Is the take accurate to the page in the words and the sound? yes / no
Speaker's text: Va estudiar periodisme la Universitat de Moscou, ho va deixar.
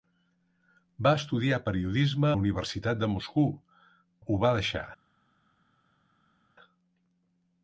yes